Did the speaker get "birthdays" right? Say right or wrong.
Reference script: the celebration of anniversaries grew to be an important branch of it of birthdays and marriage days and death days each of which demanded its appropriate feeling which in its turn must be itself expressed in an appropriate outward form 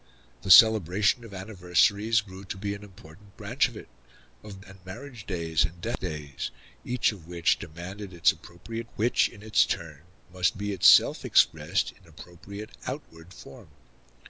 wrong